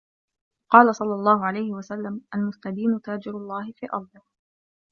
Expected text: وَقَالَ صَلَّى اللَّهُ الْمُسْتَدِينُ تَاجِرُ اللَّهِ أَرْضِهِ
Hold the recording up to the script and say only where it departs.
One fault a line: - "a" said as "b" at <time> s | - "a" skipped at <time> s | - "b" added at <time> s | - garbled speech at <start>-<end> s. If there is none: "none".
- "عَلَيْهِ وَسَلَّمَ" added at 1.5 s
- "فِي" added at 3.7 s